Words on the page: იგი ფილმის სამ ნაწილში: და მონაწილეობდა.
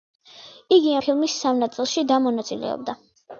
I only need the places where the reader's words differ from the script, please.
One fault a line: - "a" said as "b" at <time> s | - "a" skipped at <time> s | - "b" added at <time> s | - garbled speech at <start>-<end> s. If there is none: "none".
none